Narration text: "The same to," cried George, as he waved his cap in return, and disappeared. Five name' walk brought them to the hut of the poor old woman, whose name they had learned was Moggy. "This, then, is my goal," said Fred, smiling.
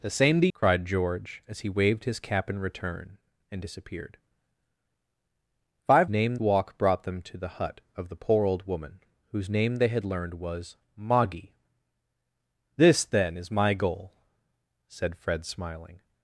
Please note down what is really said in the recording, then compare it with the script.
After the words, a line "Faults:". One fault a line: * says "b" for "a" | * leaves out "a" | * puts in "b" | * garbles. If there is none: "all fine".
"The same to," cried George, as he waved his cap in return, and disappeared. Five name' walk brought them to the hut of the poor old woman, whose name they had learned was Moggy. "This, then, is my goal," said Fred, smiling.
Faults:
all fine